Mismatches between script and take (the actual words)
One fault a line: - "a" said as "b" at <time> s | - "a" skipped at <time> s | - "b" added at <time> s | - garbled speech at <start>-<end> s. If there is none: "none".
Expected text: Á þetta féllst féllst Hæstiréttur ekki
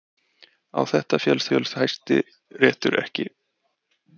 none